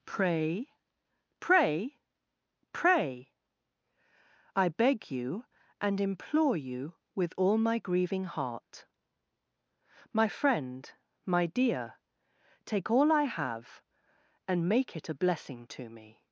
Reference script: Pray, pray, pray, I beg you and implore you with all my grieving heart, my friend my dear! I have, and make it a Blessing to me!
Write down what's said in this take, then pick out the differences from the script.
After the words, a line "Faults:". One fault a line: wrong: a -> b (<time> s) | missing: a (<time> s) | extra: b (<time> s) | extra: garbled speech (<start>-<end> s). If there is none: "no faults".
Pray, pray, pray, I beg you and implore you with all my grieving heart, my friend my dear! take all I have, and make it a Blessing to me!
Faults:
extra: take all (12.6 s)